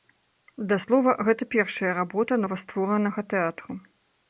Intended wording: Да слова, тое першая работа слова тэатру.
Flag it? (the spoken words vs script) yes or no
yes